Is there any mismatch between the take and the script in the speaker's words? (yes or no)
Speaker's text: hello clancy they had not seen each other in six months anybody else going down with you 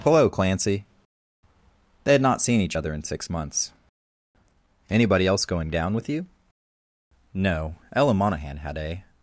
yes